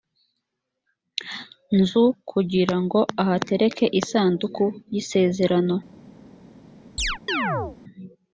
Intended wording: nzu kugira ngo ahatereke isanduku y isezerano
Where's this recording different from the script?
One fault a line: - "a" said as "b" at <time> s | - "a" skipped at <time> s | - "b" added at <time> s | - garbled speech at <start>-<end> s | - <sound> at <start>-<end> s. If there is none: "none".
- chirp at 7.0-7.8 s